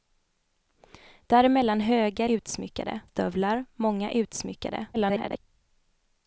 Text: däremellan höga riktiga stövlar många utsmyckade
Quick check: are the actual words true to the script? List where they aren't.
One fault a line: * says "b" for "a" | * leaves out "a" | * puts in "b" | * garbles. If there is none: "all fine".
* says "utsmyckade" for "riktiga"
* garbles